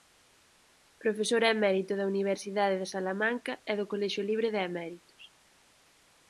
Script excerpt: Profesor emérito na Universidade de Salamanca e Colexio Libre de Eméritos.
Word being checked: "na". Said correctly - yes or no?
no